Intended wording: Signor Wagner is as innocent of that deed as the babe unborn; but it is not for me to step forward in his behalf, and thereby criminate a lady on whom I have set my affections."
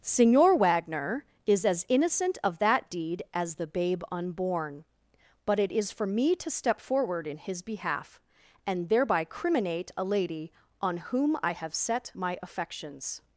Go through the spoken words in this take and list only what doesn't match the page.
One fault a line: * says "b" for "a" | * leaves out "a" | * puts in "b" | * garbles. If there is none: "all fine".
* leaves out "not"